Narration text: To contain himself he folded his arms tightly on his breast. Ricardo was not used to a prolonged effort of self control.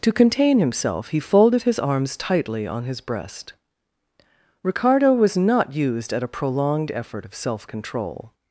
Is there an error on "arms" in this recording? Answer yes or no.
no